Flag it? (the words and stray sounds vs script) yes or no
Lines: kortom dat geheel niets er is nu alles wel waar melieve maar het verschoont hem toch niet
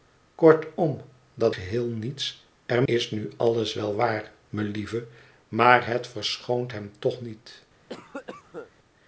yes